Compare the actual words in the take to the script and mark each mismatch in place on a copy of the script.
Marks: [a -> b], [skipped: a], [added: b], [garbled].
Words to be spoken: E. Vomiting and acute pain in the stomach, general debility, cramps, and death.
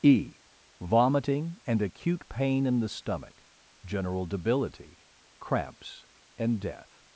E. Vomiting and acute pain in the stomach, general debility, cramps, and death.